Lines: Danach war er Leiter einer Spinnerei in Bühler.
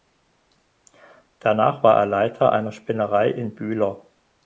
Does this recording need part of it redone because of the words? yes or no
no